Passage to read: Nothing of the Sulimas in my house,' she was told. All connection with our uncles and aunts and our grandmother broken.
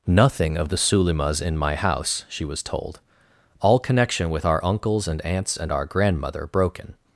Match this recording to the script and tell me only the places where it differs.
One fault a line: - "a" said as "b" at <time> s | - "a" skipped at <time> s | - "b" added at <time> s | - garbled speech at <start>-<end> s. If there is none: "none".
none